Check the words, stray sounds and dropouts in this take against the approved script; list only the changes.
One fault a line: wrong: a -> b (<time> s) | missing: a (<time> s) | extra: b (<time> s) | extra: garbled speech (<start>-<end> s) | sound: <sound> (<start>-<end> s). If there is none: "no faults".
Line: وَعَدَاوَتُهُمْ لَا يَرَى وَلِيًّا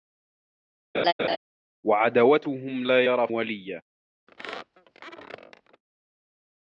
sound: laugh (0.9-1.4 s)
sound: squeak (4.3-5.8 s)